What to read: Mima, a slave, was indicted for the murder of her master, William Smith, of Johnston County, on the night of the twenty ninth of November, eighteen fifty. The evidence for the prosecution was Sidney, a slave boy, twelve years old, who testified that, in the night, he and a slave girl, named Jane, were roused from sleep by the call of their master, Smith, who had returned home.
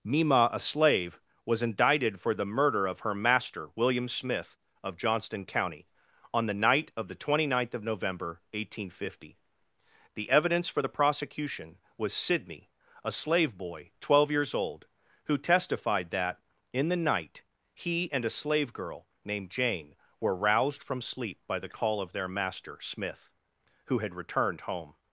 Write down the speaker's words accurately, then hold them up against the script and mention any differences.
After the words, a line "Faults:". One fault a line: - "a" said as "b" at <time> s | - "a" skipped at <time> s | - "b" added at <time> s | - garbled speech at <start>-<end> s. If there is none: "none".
Mima, a slave, was indicted for the murder of her master, William Smith, of Johnston County, on the night of the twenty ninth of November, eighteen fifty. The evidence for the prosecution was Sidney, a slave boy, twelve years old, who testified that, in the night, he and a slave girl, named Jane, were roused from sleep by the call of their master, Smith, who had returned home.
Faults:
none